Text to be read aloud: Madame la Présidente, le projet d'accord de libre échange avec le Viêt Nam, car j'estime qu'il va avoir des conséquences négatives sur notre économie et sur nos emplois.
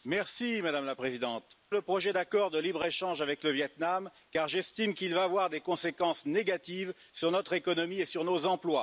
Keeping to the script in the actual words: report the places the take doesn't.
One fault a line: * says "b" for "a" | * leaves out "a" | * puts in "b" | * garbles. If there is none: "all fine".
all fine